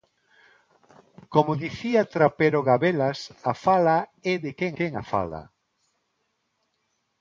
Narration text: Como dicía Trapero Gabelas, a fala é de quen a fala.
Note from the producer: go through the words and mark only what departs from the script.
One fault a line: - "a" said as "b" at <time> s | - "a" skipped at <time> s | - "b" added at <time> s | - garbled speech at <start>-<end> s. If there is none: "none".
- "quen" added at 4.8 s